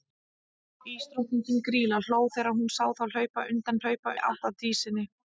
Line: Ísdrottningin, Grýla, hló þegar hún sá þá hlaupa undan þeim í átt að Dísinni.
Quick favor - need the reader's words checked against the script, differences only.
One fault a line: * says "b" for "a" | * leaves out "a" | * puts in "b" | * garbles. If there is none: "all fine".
* says "hlaupa" for "þeim"